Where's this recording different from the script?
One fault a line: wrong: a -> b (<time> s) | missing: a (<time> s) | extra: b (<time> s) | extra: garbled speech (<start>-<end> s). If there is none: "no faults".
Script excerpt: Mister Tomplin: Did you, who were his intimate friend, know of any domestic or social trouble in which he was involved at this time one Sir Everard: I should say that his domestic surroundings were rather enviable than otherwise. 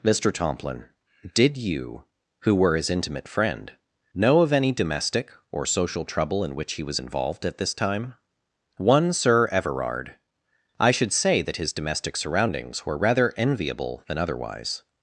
no faults